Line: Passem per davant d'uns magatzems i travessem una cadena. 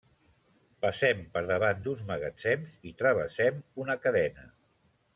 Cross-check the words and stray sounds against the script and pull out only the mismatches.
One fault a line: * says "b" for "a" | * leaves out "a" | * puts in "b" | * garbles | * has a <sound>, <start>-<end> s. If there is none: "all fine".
all fine